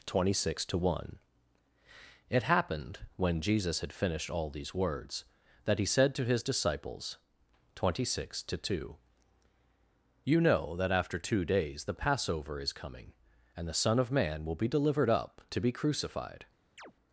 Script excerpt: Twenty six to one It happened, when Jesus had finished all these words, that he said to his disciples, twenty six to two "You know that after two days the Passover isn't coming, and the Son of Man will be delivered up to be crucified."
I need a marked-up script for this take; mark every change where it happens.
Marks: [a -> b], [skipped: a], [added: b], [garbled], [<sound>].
Twenty six to one It happened, when Jesus had finished all these words, that he said to his disciples, twenty six to two "You know that after two days the Passover [isn't -> is] coming, and the Son of Man will be delivered up to be crucified." [chirp]